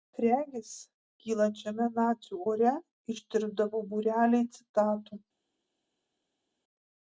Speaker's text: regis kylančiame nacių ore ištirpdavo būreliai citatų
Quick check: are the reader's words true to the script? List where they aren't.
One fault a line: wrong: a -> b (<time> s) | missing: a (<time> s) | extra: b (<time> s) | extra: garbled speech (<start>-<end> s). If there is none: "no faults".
no faults